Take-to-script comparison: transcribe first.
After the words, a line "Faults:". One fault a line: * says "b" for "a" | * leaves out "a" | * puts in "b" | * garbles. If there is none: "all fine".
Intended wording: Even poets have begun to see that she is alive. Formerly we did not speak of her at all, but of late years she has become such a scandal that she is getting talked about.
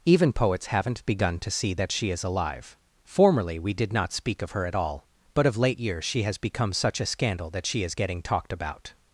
Even poets haven't begun to see that she is alive. Formerly we did not speak of her at all, but of late years she has become such a scandal that she is getting talked about.
Faults:
* says "haven't" for "have"